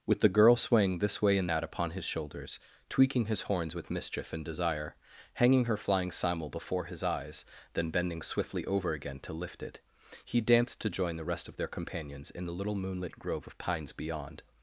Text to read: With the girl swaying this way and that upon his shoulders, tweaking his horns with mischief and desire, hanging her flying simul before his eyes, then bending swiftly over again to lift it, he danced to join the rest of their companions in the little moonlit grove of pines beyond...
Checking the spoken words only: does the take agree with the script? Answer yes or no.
yes